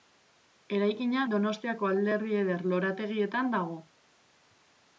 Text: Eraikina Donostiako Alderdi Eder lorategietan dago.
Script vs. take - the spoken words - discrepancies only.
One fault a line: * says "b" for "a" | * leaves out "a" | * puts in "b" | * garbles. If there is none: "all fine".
all fine